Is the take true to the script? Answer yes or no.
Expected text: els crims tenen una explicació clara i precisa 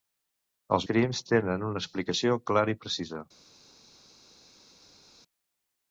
yes